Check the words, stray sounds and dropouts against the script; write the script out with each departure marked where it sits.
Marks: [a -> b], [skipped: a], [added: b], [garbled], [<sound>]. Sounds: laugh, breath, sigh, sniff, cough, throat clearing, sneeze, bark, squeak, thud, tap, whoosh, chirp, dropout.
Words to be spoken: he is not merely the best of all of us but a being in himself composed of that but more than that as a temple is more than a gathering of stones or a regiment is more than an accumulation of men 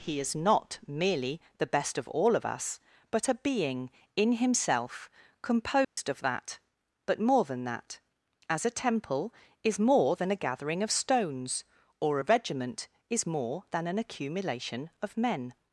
he is not merely the best of all of us but a being in himself composed [dropout] of that but more than that as a temple is more than a gathering of stones or a regiment is more than an accumulation of men